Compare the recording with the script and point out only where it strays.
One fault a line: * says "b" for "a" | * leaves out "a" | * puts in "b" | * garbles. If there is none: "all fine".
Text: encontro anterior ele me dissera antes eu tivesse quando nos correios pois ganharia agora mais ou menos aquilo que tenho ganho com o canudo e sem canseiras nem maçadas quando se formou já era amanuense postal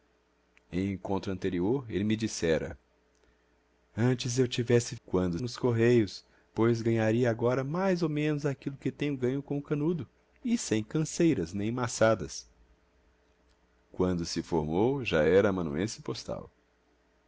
all fine